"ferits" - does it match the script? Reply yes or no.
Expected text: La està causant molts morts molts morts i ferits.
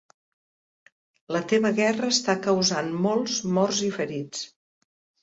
yes